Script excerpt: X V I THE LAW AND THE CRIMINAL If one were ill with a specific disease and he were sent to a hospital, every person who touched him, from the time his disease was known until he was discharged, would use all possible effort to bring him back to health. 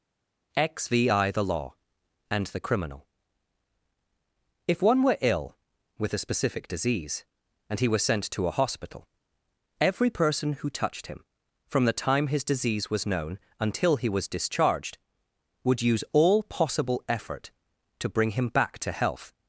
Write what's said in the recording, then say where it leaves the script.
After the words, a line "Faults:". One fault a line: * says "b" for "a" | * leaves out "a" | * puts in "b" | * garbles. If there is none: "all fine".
X V I THE LAW AND THE CRIMINAL If one were ill with a specific disease and he were sent to a hospital, every person who touched him, from the time his disease was known until he was discharged, would use all possible effort to bring him back to health.
Faults:
all fine